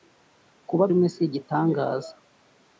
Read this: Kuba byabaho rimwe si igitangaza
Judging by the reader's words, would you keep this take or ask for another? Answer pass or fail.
fail